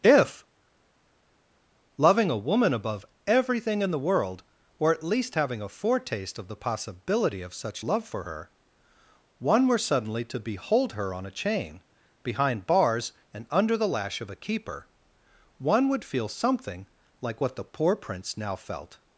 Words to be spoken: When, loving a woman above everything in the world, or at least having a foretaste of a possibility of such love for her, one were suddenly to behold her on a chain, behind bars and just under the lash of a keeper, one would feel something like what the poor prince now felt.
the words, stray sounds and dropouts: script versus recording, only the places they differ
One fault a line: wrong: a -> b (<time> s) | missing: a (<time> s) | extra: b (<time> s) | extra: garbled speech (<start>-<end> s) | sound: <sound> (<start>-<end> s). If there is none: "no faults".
wrong: When -> If (0.0 s)
wrong: a -> the (6.5 s)
missing: just (13.5 s)